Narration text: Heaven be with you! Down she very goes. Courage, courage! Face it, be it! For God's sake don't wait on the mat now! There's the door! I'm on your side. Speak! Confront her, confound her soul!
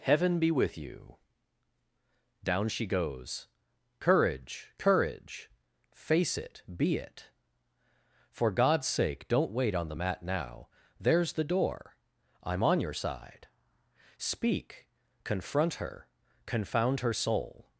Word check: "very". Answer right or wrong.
wrong